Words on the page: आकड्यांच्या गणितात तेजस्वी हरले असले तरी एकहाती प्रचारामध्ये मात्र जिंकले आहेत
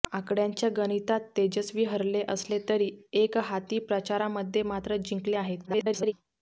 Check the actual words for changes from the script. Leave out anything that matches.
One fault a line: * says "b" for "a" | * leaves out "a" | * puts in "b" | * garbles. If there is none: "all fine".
* garbles